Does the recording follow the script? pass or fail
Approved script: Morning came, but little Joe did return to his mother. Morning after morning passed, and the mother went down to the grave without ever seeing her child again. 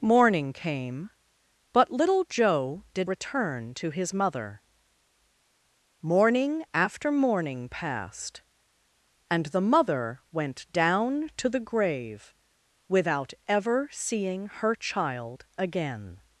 pass